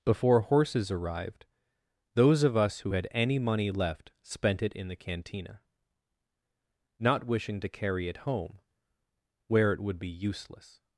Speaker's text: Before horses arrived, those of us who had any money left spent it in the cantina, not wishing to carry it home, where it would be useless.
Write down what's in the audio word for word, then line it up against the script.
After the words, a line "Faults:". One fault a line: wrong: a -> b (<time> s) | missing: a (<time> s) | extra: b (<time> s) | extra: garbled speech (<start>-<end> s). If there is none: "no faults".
Before horses arrived, those of us who had any money left spent it in the cantina, not wishing to carry it home, where it would be useless.
Faults:
no faults